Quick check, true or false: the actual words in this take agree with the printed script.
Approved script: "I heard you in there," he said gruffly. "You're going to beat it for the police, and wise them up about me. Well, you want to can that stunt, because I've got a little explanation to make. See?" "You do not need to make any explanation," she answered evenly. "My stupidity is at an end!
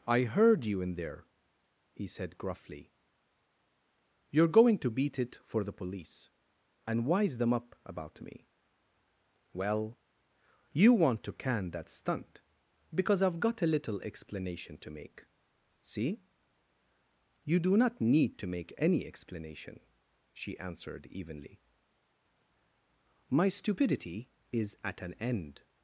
true